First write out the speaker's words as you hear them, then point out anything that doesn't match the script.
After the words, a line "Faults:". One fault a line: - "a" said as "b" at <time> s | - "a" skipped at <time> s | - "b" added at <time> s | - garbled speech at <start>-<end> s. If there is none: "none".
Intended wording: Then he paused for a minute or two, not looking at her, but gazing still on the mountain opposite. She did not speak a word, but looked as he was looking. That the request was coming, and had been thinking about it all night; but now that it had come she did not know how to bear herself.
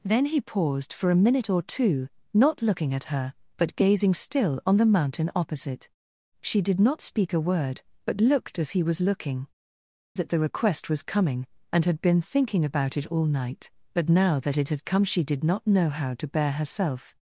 Then he paused for a minute or two, not looking at her, but gazing still on the mountain opposite. She did not speak a word, but looked as he was looking. That the request was coming, and had been thinking about it all night; but now that it had come she did not know how to bear herself.
Faults:
none